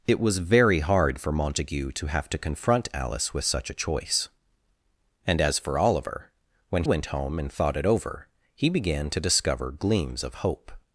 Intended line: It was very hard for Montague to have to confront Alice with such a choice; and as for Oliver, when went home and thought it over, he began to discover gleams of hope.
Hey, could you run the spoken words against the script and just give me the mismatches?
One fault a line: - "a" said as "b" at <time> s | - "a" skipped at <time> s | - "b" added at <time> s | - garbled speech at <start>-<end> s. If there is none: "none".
none